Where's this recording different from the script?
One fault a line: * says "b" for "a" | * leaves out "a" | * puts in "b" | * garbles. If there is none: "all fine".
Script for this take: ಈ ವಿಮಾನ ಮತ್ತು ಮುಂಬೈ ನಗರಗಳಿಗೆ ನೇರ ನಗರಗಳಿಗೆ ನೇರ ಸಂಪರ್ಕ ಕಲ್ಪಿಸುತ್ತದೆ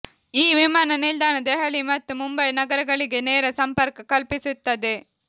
* puts in "ನಿಲ್ದಾಣ ದೆಹಲಿ"
* leaves out "ನಗರಗಳಿಗೆ ನೇರ"